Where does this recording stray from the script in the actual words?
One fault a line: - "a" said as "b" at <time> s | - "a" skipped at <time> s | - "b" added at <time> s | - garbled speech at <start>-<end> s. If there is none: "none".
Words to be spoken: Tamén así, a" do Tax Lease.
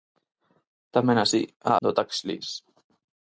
none